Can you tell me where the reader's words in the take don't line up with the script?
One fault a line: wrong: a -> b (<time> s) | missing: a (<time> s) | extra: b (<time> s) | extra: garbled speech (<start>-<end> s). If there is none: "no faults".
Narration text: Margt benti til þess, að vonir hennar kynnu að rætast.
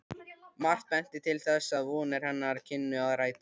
no faults